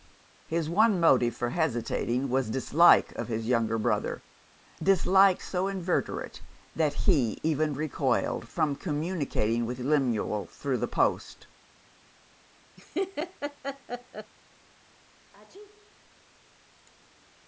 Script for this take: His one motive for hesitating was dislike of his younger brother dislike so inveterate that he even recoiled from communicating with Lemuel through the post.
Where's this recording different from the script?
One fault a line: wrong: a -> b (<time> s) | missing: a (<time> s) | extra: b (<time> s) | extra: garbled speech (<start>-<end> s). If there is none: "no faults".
no faults